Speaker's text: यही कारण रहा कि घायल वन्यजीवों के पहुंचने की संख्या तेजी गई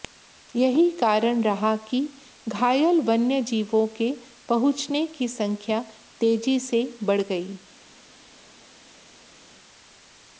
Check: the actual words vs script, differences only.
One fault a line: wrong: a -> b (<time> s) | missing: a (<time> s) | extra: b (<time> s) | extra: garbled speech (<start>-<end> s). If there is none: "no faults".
extra: से बढ़ (6.6 s)